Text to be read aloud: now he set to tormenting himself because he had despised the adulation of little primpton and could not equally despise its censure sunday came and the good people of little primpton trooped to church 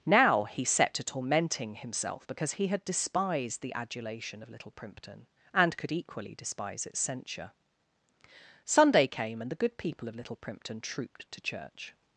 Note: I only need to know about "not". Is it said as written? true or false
false